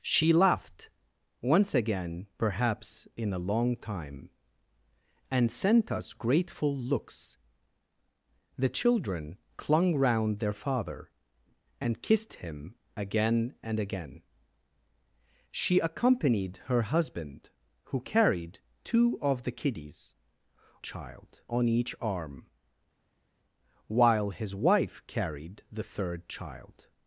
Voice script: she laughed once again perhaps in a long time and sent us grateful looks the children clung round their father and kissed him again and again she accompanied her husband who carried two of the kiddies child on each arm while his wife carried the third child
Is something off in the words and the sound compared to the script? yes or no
no